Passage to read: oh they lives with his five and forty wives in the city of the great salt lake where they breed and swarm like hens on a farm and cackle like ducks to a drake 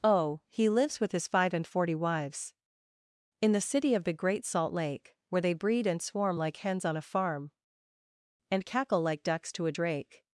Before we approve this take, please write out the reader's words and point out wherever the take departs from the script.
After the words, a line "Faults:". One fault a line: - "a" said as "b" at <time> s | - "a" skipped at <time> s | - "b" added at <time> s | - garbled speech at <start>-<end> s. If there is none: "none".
oh he lives with his five and forty wives in the city of the great salt lake where they breed and swarm like hens on a farm and cackle like ducks to a drake
Faults:
- "they" said as "he" at 0.5 s